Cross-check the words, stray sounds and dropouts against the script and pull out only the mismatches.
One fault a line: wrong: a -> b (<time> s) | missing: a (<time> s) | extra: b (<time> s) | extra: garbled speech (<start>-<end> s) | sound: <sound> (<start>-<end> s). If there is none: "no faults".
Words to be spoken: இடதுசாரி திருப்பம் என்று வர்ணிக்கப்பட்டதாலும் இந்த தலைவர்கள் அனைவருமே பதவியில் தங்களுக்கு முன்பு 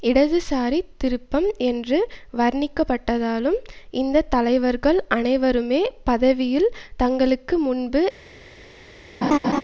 sound: laugh (9.2-9.6 s)